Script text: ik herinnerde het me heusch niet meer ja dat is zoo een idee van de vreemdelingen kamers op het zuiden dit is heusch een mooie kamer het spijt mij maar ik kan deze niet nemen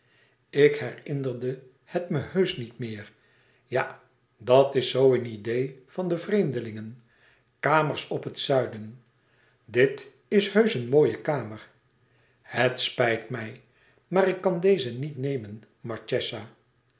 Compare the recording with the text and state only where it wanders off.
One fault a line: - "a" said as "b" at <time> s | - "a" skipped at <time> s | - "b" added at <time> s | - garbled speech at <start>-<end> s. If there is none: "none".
none